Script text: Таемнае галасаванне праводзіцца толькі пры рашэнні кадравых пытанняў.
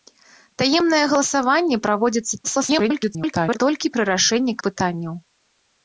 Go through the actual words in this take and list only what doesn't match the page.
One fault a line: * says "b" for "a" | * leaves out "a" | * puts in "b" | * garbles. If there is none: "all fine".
* garbles
* leaves out "кадравых"